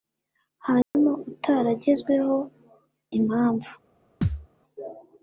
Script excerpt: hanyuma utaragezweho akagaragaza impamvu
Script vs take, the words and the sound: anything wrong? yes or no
yes